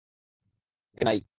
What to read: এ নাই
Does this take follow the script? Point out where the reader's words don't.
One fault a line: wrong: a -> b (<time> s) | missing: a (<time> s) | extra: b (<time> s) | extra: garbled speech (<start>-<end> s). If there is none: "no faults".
no faults